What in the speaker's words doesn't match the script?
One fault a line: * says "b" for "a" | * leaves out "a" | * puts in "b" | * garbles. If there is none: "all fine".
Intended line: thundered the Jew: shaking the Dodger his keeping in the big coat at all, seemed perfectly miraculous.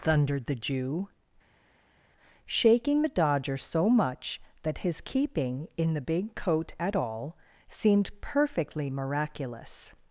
* puts in "so much that"